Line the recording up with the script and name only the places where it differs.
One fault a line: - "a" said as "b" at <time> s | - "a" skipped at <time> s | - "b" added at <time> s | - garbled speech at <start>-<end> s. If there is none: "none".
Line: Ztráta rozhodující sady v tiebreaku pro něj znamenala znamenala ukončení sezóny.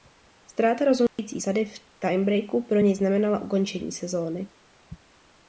- "znamenala" skipped at 3.4 s